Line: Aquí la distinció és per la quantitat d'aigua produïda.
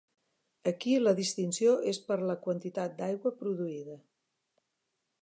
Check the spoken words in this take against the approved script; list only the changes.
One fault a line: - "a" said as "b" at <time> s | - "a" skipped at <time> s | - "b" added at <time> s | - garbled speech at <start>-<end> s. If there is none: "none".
none